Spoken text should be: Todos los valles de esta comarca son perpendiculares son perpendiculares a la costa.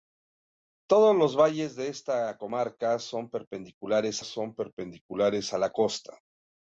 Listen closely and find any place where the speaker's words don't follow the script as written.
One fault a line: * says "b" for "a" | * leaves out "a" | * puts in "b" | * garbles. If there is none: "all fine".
all fine